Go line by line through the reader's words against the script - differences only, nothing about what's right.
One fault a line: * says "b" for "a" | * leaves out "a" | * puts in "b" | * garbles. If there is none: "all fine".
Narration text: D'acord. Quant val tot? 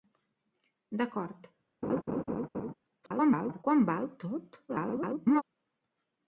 * garbles
* garbles